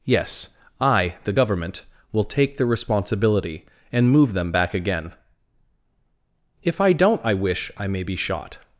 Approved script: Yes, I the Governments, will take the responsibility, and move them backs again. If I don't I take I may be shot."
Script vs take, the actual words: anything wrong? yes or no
yes